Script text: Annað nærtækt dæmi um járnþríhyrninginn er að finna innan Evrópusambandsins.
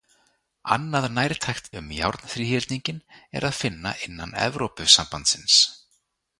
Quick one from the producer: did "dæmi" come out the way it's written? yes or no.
no